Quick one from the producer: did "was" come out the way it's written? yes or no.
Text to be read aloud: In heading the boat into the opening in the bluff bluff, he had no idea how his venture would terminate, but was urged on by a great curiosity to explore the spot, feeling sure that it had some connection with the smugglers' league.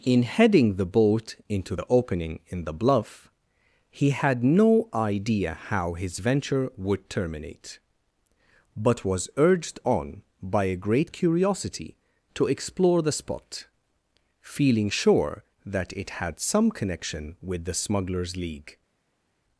yes